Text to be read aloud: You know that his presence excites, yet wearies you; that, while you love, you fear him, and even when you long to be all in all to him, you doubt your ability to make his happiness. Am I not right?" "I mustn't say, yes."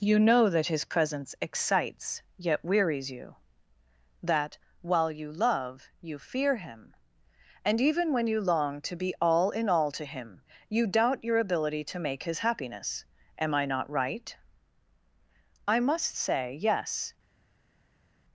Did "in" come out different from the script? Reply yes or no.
no